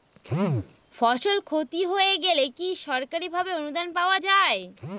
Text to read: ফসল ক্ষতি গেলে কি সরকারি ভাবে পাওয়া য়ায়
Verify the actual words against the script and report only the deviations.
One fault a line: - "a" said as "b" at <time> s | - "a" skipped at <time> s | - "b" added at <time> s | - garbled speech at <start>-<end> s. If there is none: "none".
- "হয়ে" added at 1.9 s
- "অনুদান" added at 3.5 s